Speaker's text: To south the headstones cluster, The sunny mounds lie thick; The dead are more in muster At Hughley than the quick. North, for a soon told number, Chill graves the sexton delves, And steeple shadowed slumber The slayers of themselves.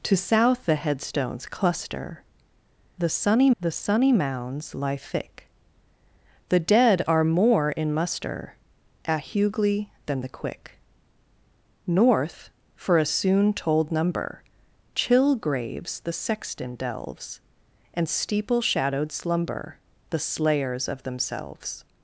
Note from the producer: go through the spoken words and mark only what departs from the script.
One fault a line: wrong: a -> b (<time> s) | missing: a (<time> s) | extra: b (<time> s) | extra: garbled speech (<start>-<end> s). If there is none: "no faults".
extra: The sunny (3.6 s)